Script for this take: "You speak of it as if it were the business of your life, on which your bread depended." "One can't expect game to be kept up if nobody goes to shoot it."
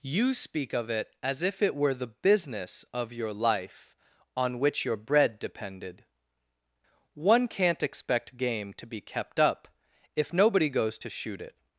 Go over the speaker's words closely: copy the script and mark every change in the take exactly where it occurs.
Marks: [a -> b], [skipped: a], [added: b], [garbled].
"You speak of it as if it were the business of your life, on which your bread depended." "One can't expect game to be kept up if nobody goes to shoot it."